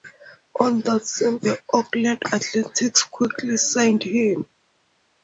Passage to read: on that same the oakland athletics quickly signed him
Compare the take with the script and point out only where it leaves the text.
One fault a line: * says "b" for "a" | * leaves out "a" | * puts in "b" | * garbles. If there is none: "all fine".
all fine